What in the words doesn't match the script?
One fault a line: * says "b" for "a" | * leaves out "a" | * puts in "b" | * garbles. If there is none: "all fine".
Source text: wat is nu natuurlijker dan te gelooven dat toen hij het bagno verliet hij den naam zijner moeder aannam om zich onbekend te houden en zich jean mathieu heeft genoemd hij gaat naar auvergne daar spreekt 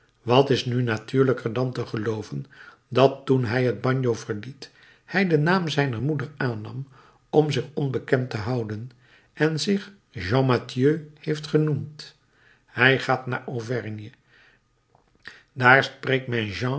all fine